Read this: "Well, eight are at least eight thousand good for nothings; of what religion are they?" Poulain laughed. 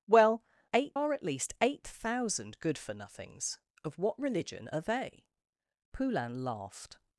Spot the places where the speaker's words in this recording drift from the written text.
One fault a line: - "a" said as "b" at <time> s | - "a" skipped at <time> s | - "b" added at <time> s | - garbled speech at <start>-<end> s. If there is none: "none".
none